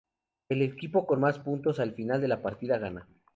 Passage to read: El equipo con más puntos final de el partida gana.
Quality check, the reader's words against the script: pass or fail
fail